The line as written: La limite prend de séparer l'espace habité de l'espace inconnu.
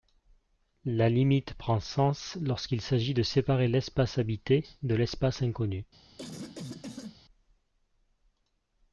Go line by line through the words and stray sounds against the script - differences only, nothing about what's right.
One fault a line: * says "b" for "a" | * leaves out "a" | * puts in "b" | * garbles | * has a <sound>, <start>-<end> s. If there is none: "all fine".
* puts in "sens lorsqu'il s'agit"
* has a cough, 6.2-7.2 s